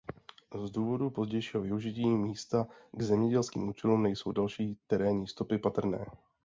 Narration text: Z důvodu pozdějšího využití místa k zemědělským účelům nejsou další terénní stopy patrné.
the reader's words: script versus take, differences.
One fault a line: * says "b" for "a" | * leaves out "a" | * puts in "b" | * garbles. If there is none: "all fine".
all fine